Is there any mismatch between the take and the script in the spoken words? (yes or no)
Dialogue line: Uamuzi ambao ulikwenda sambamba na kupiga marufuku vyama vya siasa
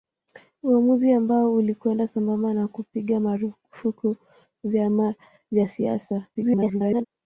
yes